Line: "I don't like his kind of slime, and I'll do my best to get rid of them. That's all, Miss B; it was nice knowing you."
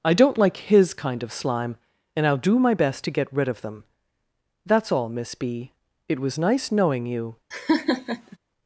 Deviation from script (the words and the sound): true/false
true